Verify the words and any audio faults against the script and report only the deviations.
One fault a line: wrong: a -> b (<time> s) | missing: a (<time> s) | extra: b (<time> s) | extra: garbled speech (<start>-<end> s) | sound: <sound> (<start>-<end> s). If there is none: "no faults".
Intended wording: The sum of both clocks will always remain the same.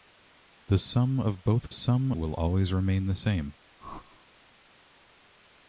wrong: clocks -> sum (1.7 s)
sound: whoosh (3.8-4.3 s)